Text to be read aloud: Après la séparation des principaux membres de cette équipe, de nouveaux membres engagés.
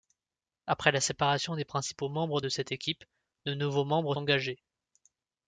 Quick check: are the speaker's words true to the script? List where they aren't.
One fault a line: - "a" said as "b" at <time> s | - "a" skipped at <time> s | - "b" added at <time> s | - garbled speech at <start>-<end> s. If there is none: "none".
none